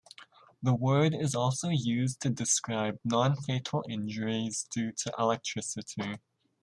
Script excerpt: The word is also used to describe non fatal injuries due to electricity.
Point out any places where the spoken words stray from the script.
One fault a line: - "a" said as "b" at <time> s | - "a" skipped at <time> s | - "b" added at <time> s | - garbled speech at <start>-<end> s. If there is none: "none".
none